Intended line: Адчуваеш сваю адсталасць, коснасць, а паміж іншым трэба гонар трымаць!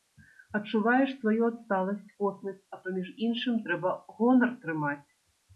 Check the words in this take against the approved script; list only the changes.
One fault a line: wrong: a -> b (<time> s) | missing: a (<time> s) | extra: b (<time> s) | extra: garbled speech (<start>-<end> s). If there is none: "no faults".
no faults